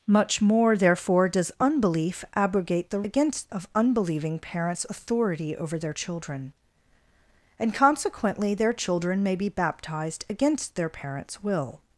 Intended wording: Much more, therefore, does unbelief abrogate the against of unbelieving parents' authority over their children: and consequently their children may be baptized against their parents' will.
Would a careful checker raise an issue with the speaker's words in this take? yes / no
no